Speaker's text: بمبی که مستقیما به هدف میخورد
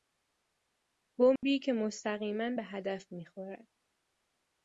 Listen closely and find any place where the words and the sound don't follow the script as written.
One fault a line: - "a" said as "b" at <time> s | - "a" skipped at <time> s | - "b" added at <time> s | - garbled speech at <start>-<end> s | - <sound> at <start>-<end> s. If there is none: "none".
- dropout at 1.4-1.4 s